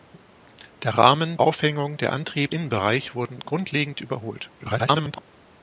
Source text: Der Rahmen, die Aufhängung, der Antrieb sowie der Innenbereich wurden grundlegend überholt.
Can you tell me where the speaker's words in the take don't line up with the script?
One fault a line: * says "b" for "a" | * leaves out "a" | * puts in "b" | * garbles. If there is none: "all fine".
* leaves out "die"
* leaves out "sowie der"
* garbles